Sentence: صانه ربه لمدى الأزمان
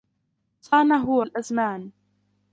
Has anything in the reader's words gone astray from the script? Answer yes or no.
yes